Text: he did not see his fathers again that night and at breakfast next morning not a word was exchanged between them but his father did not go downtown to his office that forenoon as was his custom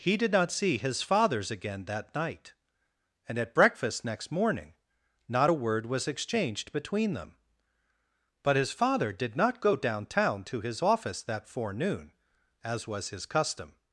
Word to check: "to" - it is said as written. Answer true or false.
true